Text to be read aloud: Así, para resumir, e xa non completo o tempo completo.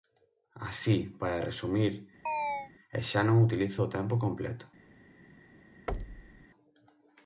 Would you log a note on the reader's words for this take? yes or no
yes